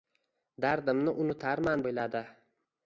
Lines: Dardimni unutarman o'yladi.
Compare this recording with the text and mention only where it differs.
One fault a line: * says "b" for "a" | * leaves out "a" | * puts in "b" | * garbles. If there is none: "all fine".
all fine